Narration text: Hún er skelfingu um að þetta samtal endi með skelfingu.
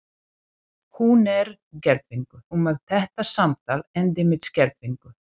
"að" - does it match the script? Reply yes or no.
yes